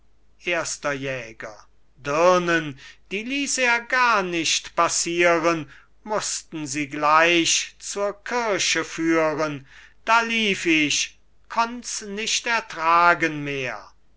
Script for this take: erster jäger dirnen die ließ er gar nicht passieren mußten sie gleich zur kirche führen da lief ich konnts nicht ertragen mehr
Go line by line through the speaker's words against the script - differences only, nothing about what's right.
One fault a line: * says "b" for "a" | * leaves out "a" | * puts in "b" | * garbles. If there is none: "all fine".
all fine